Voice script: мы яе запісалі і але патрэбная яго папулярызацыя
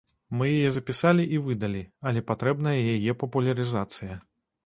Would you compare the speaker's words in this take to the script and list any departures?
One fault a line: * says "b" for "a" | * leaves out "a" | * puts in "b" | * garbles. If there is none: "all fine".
* puts in "выдалі"
* says "яе" for "яго"